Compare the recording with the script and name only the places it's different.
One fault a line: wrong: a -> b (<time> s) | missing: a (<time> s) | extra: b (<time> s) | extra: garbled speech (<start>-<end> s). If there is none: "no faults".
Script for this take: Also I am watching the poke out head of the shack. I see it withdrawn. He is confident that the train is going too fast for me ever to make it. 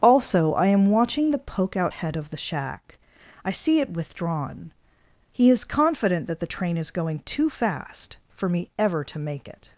no faults